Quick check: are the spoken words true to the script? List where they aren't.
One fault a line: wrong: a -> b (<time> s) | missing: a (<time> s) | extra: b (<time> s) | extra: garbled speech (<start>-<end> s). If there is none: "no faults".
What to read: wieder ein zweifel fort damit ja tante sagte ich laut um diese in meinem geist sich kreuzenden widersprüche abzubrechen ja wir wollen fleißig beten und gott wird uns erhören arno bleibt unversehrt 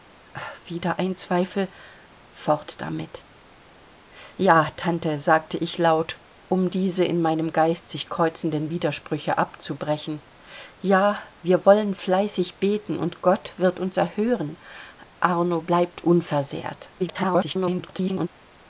extra: garbled speech (17.0-18.3 s)